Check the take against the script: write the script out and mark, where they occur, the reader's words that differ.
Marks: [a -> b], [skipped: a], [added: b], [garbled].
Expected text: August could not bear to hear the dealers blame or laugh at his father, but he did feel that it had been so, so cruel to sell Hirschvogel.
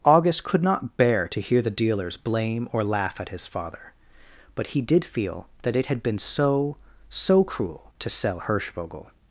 August could not bear to hear the dealers blame or laugh at his father, but he did feel that it had been so, so cruel to sell Hirschvogel.